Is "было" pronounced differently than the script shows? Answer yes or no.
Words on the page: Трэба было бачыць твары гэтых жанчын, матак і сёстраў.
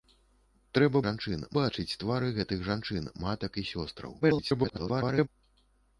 yes